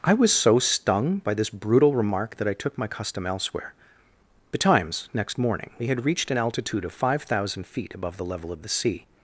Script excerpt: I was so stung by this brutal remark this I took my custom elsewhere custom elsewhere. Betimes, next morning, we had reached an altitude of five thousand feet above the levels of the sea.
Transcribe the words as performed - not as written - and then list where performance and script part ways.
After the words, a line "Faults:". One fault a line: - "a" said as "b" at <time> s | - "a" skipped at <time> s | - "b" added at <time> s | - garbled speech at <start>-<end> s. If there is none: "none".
I was so stung by this brutal remark that I took my custom elsewhere. Betimes, next morning, we had reached an altitude of five thousand feet above the level of the sea.
Faults:
- "this" said as "that" at 2.4 s
- "custom elsewhere" skipped at 3.7 s
- "levels" said as "level" at 8.2 s